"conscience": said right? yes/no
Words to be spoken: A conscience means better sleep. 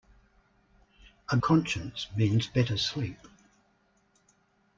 yes